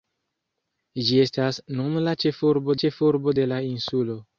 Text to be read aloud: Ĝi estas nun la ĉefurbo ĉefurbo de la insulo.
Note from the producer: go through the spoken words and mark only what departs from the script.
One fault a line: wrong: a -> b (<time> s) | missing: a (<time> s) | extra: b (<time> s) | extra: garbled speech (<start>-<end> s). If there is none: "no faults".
no faults